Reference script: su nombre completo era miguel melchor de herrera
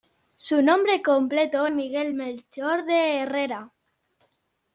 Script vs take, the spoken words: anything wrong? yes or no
yes